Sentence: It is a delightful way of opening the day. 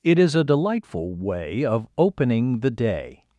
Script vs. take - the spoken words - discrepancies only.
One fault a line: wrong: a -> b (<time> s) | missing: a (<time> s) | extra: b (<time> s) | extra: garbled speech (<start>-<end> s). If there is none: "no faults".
no faults